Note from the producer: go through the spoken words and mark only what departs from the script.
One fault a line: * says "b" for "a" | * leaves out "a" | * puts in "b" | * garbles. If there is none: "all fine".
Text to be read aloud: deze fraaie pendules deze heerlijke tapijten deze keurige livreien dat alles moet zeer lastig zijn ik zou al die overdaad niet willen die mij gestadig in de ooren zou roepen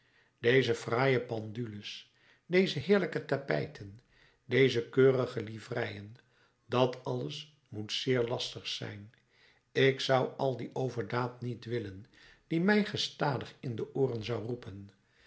all fine